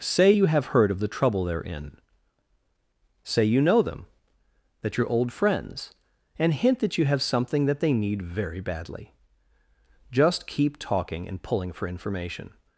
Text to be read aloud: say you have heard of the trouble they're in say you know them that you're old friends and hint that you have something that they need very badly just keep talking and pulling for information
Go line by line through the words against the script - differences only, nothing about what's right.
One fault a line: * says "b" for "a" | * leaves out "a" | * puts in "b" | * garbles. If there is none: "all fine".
all fine